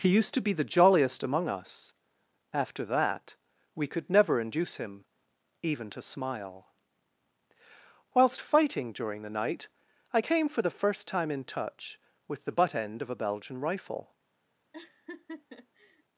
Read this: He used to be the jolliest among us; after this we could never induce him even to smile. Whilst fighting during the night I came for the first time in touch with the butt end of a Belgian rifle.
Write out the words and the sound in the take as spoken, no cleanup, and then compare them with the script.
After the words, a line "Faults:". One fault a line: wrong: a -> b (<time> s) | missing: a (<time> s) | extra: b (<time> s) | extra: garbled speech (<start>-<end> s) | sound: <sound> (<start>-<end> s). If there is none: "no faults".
He used to be the jolliest among us; after that we could never induce him even to smile. Whilst fighting during the night I came for the first time in touch with the butt end of a Belgian rifle.
Faults:
wrong: this -> that (2.9 s)
sound: laugh (14.7-16.0 s)